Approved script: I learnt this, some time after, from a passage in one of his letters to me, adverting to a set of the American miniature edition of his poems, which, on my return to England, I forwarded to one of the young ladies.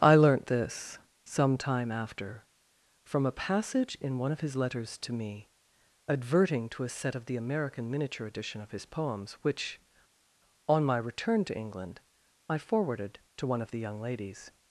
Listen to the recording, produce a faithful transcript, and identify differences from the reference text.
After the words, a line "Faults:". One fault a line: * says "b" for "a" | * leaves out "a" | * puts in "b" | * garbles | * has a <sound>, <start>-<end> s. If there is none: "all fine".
I learnt this, some time after, from a passage in one of his letters to me, adverting to a set of the American miniature edition of his poems, which, on my return to England, I forwarded to one of the young ladies.
Faults:
all fine